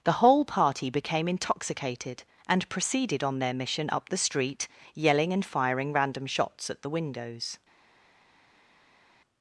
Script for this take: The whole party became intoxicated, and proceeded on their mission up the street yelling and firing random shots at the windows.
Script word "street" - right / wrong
right